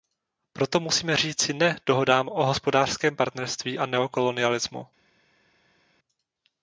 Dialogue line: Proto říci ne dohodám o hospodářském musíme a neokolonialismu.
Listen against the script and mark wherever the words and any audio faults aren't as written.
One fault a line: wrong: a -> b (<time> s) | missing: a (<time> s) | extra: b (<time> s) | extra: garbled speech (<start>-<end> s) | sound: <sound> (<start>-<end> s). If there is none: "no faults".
extra: musíme (0.8 s)
wrong: musíme -> partnerství (3.1 s)